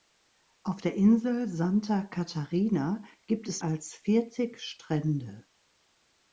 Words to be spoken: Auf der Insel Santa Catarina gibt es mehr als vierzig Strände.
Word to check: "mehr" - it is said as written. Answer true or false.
false